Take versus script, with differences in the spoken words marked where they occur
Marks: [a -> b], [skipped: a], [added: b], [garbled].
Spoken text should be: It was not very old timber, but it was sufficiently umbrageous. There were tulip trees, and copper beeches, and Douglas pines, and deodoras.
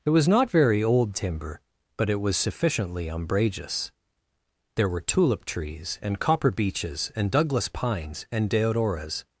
It was not very old timber, but it was sufficiently umbrageous. There were tulip trees, and copper beeches, and Douglas pines, and deodoras.